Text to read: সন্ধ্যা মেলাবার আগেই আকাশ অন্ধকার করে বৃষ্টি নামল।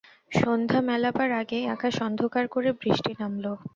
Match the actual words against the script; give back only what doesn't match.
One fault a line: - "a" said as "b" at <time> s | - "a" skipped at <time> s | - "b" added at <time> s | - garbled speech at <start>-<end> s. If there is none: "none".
none